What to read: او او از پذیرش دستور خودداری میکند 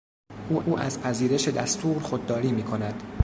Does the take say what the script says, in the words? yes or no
yes